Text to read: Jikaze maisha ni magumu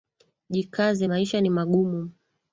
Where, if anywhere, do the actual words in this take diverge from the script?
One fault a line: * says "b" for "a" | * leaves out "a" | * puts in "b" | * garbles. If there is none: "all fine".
all fine